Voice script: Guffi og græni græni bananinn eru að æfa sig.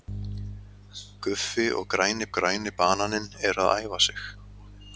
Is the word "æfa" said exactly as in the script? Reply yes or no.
yes